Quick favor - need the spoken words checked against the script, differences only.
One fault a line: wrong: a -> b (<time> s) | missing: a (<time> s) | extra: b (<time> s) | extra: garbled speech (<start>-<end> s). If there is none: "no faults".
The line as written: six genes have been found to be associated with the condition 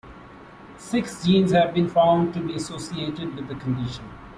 no faults